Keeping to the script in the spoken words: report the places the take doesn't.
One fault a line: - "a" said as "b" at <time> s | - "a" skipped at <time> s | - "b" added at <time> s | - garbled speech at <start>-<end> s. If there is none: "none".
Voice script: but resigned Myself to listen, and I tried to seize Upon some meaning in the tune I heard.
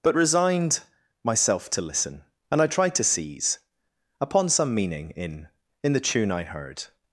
- "in" added at 5.8 s